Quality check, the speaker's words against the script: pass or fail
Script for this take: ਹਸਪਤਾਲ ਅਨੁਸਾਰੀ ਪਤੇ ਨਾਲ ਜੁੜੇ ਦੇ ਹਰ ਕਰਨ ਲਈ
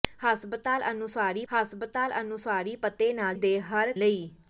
fail